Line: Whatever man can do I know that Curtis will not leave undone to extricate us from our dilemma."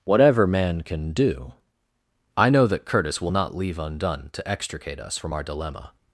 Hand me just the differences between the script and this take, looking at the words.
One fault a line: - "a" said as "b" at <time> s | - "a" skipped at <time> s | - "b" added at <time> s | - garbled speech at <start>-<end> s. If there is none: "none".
none